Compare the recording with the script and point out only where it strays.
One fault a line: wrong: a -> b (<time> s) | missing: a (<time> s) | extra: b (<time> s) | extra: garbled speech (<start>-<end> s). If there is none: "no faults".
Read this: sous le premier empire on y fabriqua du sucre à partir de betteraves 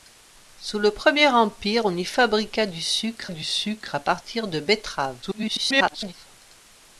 extra: du sucre (3.3 s)
extra: garbled speech (5.2-6.1 s)